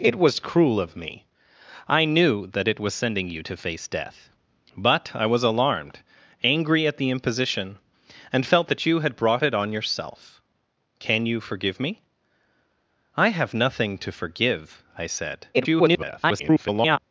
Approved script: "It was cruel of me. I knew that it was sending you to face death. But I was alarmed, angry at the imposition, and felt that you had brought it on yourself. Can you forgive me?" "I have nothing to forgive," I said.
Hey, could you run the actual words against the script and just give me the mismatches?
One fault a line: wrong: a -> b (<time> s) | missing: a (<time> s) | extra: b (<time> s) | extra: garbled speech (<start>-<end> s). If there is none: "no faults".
extra: garbled speech (15.5-17.0 s)